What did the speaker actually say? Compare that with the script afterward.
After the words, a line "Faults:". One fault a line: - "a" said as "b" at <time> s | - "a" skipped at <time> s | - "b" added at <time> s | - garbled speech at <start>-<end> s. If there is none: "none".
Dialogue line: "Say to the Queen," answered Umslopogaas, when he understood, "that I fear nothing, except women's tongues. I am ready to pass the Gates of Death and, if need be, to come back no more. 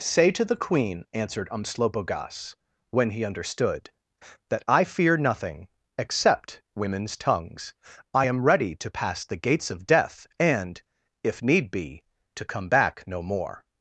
"Say to the Queen," answered Umslopogaas, when he understood, "that I fear nothing, except women's tongues. I am ready to pass the Gates of Death and, if need be, to come back no more.
Faults:
none